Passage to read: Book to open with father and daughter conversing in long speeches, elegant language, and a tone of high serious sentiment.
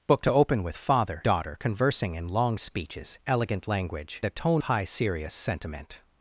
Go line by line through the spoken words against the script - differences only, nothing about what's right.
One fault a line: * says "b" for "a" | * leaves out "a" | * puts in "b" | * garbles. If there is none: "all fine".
* leaves out "and"
* leaves out "and"
* leaves out "of"